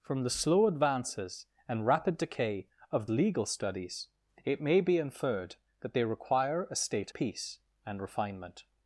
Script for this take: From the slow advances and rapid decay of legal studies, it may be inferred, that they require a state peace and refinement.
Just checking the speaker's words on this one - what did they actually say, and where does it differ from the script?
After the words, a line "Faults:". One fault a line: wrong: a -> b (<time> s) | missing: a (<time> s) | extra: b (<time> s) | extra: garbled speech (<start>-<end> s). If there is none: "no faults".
From the slow advances and rapid decay of legal studies, it may be inferred, that they require a state peace and refinement.
Faults:
no faults